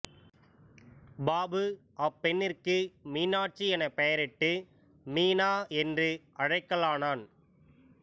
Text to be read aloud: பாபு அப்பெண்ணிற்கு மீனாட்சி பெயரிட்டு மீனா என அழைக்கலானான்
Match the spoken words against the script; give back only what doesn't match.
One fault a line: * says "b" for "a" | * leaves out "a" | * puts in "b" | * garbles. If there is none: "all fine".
* puts in "எனப்"
* says "என்று" for "என"